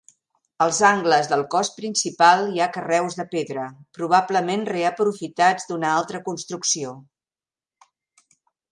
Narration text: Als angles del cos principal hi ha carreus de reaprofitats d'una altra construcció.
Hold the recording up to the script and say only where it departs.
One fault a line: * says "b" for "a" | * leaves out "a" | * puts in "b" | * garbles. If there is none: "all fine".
* puts in "pedra probablement"